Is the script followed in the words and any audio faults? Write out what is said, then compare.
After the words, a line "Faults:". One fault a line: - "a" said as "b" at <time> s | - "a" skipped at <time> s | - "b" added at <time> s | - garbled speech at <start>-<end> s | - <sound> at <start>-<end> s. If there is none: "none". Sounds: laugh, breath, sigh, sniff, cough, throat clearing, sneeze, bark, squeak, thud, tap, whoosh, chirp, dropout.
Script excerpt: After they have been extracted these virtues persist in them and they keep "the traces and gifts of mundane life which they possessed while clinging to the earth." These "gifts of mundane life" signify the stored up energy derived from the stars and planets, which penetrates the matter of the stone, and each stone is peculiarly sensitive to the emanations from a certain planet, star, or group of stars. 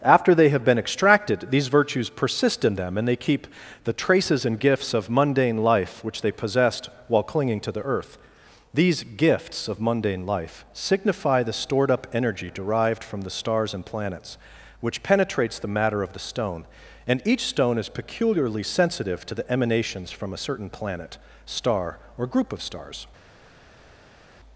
After they have been extracted these virtues persist in them and they keep "the traces and gifts of mundane life which they possessed while clinging to the earth." These "gifts of mundane life" signify the stored up energy derived from the stars and planets, which penetrates the matter of the stone, and each stone is peculiarly sensitive to the emanations from a certain planet, star, or group of stars.
Faults:
none